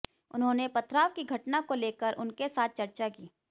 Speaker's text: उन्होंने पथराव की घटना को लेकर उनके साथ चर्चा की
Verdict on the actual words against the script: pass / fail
pass